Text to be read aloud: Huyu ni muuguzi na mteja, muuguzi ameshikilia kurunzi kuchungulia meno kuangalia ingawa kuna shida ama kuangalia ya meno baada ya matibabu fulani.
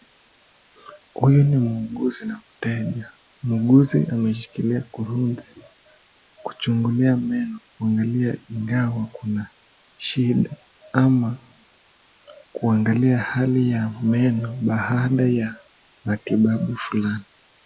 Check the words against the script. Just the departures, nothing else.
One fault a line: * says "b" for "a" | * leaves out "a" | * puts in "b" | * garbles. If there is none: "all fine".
* puts in "hali"